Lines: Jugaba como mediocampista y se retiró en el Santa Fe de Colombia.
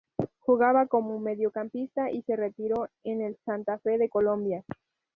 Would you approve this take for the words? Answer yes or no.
yes